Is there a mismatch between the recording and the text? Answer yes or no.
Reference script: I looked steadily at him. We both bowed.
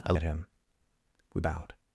yes